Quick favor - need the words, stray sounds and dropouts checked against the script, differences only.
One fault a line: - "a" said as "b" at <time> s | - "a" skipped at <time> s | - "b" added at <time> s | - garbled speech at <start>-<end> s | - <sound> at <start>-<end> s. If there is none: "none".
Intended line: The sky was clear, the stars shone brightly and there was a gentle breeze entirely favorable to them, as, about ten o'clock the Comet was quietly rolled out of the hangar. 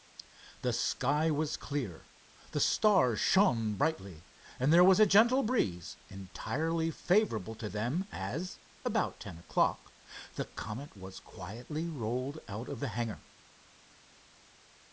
none